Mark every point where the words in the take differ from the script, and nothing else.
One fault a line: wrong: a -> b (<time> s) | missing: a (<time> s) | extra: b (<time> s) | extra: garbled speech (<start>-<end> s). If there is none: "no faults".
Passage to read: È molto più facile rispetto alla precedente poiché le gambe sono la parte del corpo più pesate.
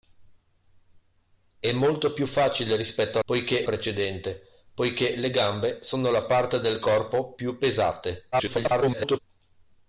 wrong: alla -> poiché (3.2 s)
extra: garbled speech (8.3-9.2 s)